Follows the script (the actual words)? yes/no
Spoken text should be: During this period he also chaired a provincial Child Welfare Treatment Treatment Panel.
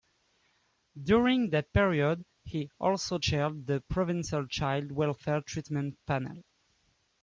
no